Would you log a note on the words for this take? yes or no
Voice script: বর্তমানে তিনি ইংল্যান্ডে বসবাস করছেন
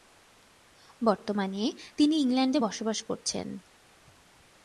no